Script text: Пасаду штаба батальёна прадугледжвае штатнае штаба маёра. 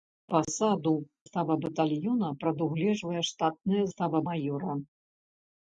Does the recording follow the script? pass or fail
pass